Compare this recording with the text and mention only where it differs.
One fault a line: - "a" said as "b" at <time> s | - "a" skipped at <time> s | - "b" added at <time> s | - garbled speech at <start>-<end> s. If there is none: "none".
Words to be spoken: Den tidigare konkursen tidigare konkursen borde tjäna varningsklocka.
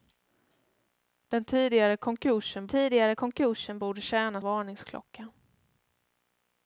none